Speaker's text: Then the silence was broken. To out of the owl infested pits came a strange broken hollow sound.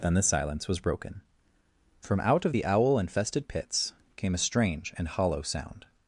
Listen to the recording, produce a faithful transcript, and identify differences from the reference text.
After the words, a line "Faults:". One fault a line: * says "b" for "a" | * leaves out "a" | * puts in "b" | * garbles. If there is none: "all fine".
Then the silence was broken. From out of the owl infested pits came a strange and hollow sound.
Faults:
* says "From" for "To"
* says "and" for "broken"